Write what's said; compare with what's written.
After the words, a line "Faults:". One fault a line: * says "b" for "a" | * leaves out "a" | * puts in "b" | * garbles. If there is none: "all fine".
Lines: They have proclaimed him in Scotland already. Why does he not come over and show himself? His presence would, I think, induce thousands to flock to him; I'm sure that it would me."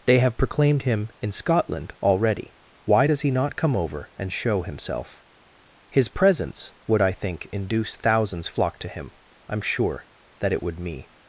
They have proclaimed him in Scotland already. Why does he not come over and show himself? His presence would, I think, induce thousands flock to him; I'm sure that it would me."
Faults:
* leaves out "to"